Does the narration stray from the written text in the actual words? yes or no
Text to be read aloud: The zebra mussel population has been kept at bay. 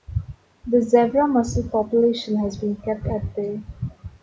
no